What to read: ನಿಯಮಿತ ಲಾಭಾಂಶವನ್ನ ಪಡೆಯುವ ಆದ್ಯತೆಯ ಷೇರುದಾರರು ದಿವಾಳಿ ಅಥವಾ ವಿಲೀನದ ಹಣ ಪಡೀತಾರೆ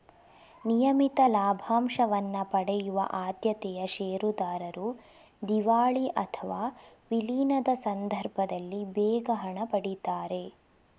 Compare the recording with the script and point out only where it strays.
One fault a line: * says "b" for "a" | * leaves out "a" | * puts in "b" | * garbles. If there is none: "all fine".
* puts in "ಸಂದರ್ಭದಲ್ಲಿ ಬೇಗ"